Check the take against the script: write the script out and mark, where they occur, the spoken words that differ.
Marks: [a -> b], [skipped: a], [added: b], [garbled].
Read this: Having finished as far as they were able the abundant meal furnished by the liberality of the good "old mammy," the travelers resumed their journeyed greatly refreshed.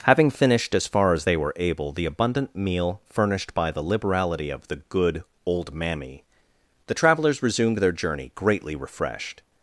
Having finished as far as they were able the abundant meal furnished by the liberality of the good "old mammy," the travelers resumed their [journeyed -> journey] greatly refreshed.